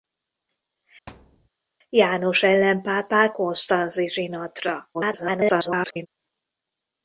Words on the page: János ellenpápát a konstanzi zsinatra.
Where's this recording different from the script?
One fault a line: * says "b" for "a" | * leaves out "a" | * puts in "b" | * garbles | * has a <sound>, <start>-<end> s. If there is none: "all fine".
* has a thud, 1.1-1.5 s
* leaves out "a"
* garbles